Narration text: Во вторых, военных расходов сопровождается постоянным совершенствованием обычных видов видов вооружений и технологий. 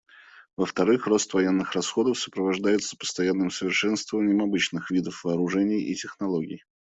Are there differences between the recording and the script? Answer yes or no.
yes